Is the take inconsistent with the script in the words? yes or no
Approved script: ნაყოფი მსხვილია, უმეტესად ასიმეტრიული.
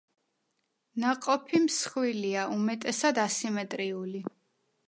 no